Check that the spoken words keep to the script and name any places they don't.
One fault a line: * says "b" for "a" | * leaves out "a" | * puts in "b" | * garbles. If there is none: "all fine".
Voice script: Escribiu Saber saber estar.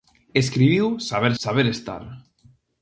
all fine